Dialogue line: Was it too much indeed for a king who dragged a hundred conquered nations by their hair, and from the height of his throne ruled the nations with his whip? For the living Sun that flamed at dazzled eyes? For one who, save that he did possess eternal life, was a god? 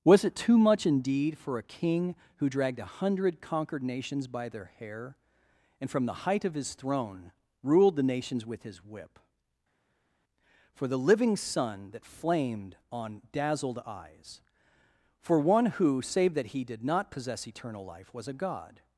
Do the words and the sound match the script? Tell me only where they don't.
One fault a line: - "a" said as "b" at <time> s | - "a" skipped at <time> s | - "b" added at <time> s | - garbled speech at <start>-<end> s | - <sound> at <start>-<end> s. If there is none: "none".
- "at" said as "on" at 12.9 s
- "not" added at 16.8 s